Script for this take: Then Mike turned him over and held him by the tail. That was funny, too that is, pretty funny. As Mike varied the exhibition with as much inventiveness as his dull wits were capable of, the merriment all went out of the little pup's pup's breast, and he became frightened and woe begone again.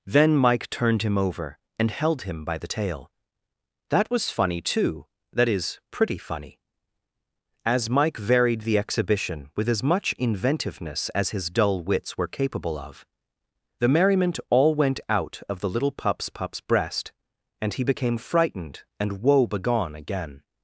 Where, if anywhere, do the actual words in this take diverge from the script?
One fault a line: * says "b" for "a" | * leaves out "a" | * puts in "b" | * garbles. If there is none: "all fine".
all fine